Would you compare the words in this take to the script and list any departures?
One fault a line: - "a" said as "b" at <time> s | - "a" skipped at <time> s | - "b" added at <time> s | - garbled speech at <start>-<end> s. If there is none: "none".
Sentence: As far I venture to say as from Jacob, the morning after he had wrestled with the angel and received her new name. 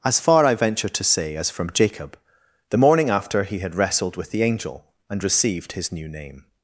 - "her" said as "his" at 5.7 s